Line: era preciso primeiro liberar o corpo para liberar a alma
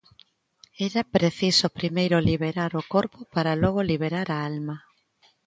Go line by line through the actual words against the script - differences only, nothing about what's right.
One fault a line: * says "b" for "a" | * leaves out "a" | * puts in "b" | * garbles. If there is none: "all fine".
* puts in "logo"